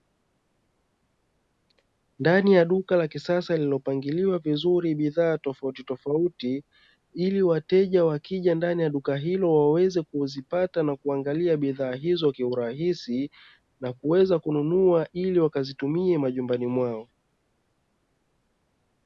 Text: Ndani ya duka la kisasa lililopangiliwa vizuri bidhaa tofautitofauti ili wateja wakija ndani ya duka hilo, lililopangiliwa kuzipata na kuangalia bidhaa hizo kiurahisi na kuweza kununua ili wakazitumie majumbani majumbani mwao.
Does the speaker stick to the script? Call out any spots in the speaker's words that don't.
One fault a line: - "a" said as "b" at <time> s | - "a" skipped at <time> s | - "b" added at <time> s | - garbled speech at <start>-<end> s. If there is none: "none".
- "lililopangiliwa" said as "waweze" at 9.6 s
- "majumbani" skipped at 16.7 s